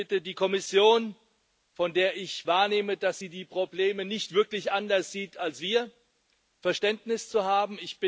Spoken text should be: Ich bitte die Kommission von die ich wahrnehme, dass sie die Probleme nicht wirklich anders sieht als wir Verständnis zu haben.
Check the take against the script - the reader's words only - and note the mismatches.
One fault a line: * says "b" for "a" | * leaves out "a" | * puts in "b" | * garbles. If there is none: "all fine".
* says "der" for "die"